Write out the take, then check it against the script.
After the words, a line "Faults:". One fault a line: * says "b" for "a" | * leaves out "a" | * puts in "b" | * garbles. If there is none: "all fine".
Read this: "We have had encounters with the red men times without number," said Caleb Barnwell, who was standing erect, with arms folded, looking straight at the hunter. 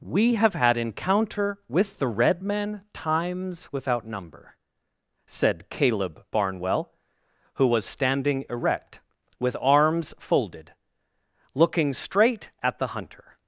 "We have had encounter with the red men times without number," said Caleb Barnwell, who was standing erect, with arms folded, looking straight at the hunter.
Faults:
* says "encounter" for "encounters"